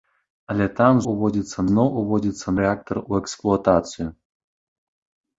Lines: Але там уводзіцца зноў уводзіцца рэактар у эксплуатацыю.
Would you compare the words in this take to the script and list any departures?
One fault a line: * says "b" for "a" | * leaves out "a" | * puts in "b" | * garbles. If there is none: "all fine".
all fine